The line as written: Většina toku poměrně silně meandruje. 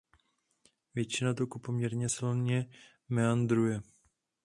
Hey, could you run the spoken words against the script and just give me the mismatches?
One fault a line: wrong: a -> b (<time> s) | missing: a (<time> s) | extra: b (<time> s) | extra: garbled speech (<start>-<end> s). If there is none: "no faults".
no faults